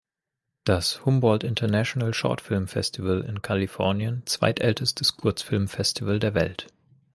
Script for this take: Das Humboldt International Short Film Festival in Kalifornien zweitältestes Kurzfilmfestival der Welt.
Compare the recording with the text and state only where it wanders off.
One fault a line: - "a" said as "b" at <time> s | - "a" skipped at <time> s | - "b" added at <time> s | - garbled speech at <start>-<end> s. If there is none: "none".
none